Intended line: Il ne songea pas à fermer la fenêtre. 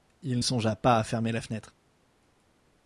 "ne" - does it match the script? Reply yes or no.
no